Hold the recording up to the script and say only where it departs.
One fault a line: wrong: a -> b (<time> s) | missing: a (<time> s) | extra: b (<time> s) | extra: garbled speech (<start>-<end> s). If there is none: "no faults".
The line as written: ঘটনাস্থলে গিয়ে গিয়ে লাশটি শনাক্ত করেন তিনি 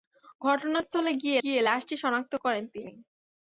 no faults